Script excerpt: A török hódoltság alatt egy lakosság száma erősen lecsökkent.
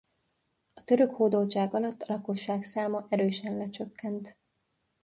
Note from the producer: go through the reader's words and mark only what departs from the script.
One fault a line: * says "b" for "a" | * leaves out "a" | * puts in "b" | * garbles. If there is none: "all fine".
* says "a" for "egy"